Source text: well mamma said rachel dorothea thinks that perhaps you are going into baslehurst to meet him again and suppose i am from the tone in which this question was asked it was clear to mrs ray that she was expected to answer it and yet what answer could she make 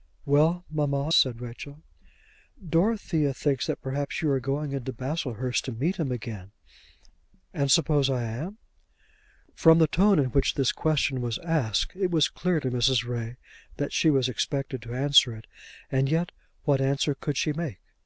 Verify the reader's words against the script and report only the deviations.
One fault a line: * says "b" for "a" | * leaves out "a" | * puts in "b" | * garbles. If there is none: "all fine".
all fine